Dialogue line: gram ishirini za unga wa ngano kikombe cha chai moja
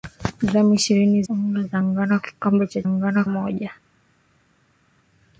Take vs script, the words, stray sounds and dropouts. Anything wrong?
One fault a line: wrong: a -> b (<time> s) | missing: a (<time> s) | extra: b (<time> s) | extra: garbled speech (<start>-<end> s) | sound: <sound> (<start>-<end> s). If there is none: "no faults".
missing: za (1.2 s)
wrong: chai -> ngano (2.9 s)